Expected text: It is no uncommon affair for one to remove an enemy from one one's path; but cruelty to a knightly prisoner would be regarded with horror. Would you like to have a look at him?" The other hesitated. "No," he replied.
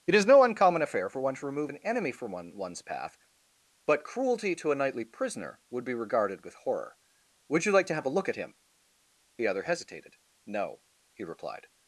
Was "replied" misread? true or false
false